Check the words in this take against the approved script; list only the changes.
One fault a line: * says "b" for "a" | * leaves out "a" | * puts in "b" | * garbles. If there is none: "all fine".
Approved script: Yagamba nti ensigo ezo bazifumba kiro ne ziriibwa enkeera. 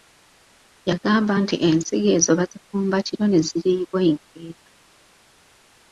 all fine